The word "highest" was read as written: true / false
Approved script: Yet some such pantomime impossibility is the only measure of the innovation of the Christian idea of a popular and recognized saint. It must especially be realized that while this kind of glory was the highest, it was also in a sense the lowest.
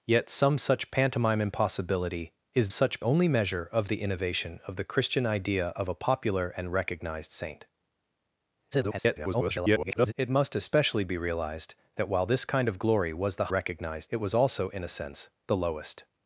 false